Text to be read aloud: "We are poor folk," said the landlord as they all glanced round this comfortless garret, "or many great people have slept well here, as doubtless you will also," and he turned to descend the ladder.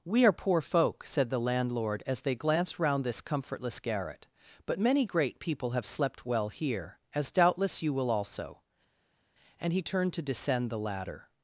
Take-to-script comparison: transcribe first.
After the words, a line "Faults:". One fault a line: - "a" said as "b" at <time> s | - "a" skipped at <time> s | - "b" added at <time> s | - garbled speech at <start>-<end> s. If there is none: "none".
"We are poor folk," said the landlord as they glanced round this comfortless garret, "but many great people have slept well here, as doubtless you will also," and he turned to descend the ladder.
Faults:
- "all" skipped at 2.3 s
- "or" said as "but" at 4.7 s